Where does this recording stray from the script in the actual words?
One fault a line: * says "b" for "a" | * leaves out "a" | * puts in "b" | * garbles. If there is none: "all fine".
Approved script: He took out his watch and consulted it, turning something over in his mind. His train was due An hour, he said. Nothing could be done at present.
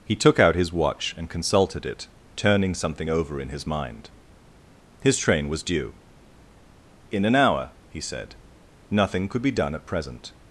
* puts in "In"